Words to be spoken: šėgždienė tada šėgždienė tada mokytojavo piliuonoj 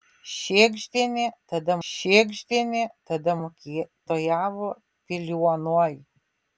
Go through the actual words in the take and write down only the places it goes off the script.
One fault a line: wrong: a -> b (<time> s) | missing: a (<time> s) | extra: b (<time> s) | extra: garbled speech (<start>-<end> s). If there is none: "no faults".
no faults